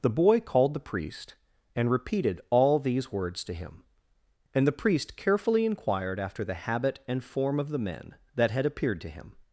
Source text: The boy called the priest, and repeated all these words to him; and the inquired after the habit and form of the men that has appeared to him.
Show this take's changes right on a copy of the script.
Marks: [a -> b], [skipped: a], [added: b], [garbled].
The boy called the priest, and repeated all these words to him; and the [added: priest carefully] inquired after the habit and form of the men that [has -> had] appeared to him.